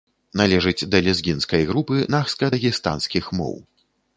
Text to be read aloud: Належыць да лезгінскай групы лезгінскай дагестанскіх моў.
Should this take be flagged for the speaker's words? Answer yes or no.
yes